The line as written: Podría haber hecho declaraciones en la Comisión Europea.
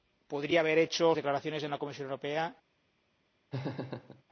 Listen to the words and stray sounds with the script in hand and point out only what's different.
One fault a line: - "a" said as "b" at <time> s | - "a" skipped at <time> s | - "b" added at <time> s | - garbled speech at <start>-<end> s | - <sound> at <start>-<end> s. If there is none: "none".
- laugh at 3.5-4.2 s